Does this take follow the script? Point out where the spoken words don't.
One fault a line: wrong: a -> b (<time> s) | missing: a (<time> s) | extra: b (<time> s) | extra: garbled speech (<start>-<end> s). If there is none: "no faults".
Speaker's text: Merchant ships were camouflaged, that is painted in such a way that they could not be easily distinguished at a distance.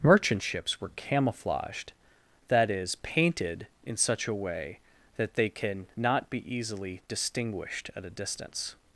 wrong: could -> can (5.5 s)